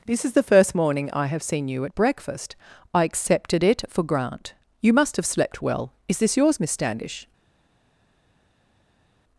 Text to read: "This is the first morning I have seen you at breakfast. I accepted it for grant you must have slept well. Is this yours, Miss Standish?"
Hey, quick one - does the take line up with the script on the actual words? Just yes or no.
yes